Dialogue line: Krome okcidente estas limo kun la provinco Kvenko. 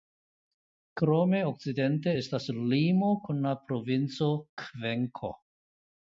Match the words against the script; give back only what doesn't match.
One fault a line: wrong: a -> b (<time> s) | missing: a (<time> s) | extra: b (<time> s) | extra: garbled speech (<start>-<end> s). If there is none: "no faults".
no faults